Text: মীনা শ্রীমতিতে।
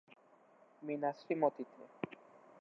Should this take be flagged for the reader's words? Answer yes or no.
no